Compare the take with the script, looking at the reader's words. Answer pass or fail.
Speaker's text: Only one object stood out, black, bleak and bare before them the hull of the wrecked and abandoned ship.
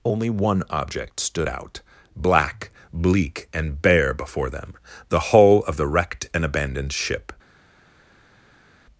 pass